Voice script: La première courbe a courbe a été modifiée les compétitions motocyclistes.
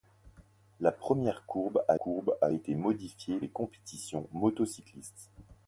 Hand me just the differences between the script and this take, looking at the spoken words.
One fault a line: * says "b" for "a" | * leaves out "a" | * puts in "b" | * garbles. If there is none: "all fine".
all fine